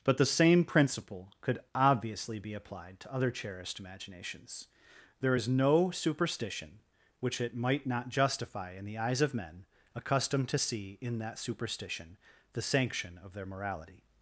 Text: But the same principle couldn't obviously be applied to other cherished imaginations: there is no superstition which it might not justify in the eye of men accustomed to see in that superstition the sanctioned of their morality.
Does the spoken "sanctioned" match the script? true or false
false